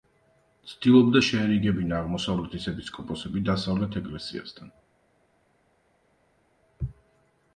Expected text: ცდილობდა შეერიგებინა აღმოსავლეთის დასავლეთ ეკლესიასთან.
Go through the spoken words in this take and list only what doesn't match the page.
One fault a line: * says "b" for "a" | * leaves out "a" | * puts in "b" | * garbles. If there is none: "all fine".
* puts in "ეპისკოპოსები"